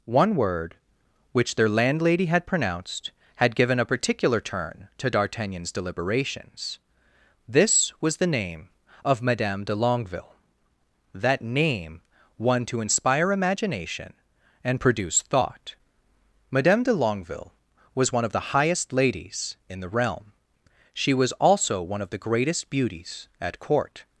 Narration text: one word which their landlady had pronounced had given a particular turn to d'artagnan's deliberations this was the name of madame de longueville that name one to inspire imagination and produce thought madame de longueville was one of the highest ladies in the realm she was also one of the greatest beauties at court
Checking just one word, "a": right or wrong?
right